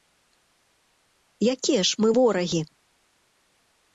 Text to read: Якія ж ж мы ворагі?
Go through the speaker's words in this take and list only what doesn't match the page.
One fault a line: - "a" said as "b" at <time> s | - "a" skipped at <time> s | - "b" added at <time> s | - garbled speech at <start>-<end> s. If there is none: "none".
- "ж" skipped at 2.0 s